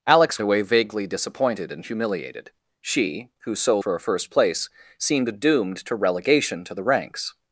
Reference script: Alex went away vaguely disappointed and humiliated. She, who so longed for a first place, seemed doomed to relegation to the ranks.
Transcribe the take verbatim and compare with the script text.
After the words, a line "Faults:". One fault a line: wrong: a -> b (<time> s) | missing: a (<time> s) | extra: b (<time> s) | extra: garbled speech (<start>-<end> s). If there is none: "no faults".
Alex away vaguely disappointed and humiliated. She, who so for a first place, seemed doomed to relegation to the ranks.
Faults:
missing: went (0.4 s)
missing: longed (3.8 s)